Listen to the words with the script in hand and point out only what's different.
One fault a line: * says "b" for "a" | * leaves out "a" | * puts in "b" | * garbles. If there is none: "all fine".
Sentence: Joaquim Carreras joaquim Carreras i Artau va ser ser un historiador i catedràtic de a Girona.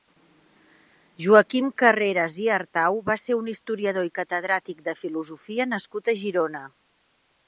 * leaves out "joaquim Carreras"
* leaves out "ser"
* puts in "filosofia nascut"